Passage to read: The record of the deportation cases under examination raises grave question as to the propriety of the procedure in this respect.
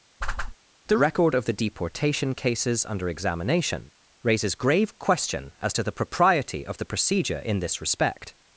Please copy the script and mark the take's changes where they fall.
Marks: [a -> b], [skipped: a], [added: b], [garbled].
The record of the deportation cases under examination raises grave question as to the propriety of the procedure in this respect.